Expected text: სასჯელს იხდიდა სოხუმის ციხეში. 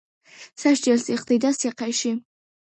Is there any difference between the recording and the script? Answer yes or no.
yes